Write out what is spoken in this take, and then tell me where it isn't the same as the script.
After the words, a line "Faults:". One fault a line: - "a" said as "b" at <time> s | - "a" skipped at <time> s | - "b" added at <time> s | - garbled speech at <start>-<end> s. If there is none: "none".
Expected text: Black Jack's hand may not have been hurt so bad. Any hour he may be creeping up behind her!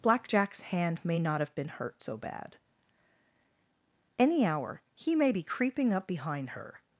Black Jack's hand may not have been hurt so bad. Any hour he may be creeping up behind her!
Faults:
none